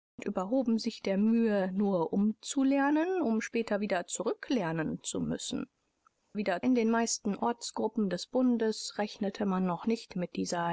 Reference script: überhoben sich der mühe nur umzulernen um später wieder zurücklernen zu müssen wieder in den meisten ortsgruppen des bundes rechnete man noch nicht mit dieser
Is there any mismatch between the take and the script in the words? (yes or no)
no